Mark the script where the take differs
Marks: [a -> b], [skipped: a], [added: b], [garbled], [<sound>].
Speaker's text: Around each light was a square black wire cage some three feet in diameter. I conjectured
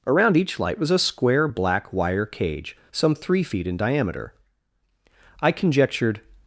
Around each light was a square black wire cage some three feet in diameter. I conjectured